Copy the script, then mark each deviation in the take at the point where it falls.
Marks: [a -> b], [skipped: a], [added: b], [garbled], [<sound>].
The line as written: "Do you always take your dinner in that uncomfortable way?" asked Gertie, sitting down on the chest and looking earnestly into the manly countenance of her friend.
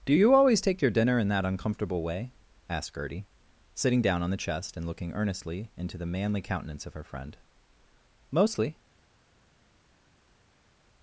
"Do you always take your dinner in that uncomfortable way?" asked Gertie, sitting down on the chest and looking earnestly into the manly countenance of her friend. [added: Mostly]